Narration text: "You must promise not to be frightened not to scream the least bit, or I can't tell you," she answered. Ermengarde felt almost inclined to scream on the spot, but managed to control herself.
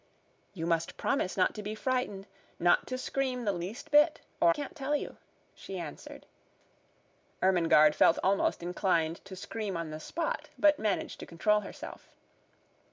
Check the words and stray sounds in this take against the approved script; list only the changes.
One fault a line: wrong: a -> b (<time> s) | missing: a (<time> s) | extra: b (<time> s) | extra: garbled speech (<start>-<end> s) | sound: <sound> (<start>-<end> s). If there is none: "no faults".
missing: I (4.5 s)